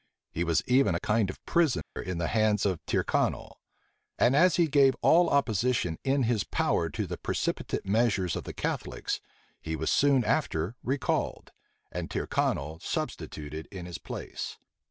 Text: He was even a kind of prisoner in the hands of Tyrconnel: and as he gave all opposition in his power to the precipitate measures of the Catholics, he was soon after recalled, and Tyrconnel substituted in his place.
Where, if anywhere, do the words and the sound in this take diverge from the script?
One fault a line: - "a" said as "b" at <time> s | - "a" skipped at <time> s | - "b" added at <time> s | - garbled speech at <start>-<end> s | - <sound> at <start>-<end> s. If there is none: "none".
- dropout at 1.8-2.0 s